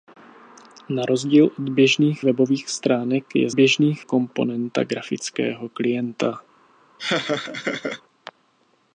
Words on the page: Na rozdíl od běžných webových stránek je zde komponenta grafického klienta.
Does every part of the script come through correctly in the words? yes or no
no